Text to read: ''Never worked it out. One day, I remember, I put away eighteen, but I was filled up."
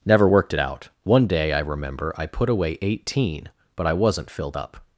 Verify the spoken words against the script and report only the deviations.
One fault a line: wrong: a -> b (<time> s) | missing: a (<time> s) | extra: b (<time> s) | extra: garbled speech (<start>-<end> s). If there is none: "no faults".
wrong: was -> wasn't (3.9 s)